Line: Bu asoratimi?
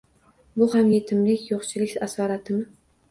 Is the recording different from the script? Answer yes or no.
yes